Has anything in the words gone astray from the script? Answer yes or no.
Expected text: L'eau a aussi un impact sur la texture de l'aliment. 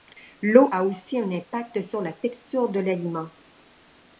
no